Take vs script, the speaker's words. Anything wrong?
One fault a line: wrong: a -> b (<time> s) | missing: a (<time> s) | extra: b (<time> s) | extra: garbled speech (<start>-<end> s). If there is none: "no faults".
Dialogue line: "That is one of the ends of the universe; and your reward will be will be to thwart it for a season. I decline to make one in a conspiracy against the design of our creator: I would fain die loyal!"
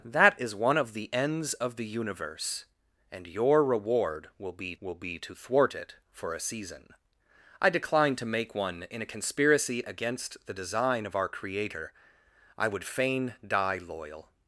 no faults